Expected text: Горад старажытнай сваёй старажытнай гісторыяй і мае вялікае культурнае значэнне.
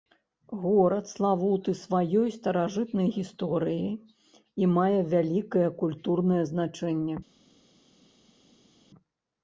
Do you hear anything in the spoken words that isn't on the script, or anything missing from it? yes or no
yes